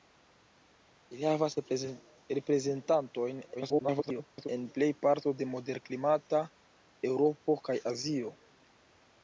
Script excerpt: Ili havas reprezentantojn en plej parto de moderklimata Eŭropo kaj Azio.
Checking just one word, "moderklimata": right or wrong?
right